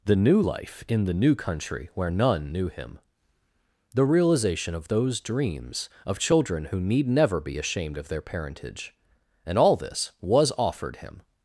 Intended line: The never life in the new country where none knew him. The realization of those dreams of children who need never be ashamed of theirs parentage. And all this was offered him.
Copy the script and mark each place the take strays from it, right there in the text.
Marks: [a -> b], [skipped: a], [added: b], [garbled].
The [never -> new] life in the new country where none knew him. The realization of those dreams of children who need never be ashamed of [theirs -> their] parentage. And all this was offered him.